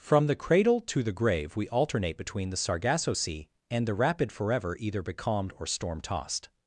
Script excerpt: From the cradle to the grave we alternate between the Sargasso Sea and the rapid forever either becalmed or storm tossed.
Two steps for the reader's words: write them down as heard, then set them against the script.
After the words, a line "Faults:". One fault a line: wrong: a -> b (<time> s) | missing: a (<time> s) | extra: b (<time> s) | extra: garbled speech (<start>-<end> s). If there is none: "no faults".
From the cradle to the grave we alternate between the Sargasso Sea and the rapid forever either becalmed or storm tossed.
Faults:
no faults